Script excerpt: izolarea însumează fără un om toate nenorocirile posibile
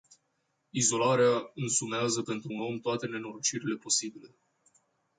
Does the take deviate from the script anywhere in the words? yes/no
yes